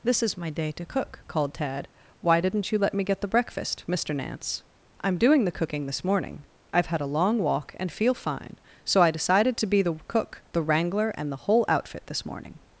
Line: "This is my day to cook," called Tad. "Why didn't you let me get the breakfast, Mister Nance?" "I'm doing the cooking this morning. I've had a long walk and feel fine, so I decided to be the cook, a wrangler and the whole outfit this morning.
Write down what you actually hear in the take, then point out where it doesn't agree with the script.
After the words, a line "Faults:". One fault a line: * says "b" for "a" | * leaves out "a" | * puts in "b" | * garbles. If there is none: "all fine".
"This is my day to cook," called Tad. "Why didn't you let me get the breakfast, Mister Nance?" "I'm doing the cooking this morning. I've had a long walk and feel fine, so I decided to be the cook, the wrangler and the whole outfit this morning.
Faults:
* says "the" for "a"